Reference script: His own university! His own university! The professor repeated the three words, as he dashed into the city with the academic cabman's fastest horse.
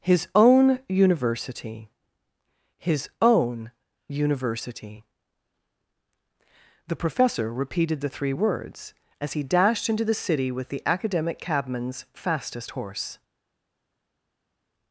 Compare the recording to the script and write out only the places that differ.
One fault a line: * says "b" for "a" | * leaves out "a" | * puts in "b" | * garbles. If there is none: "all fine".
all fine